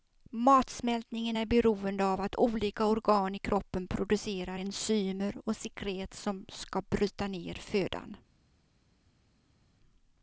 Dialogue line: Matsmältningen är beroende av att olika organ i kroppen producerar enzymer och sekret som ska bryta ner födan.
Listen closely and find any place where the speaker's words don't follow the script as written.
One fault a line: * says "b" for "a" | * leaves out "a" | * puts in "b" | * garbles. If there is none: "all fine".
all fine